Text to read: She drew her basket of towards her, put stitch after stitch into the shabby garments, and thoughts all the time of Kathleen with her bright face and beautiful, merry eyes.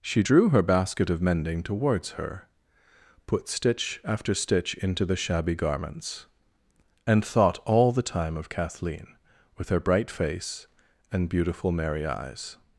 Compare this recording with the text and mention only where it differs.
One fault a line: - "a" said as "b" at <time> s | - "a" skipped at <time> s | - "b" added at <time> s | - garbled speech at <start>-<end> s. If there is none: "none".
- "mending" added at 1.2 s
- "thoughts" said as "thought" at 7.2 s